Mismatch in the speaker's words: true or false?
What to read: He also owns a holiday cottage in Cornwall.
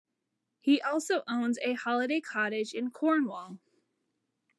false